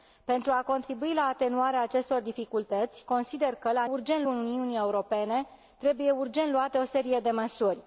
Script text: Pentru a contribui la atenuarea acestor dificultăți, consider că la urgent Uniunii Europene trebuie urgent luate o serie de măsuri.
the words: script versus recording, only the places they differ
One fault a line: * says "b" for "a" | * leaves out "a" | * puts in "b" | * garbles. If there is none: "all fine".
all fine